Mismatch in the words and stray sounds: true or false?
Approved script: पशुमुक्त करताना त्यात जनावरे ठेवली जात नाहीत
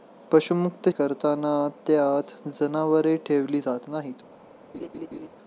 true